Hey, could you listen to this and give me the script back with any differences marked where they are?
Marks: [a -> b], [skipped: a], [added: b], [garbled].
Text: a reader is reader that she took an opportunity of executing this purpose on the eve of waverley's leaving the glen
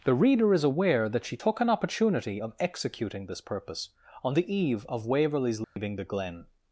[a -> the] reader is [reader -> aware] that she took an opportunity of executing this purpose on the eve of waverley's leaving the glen